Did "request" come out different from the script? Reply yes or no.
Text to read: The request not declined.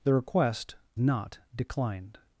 no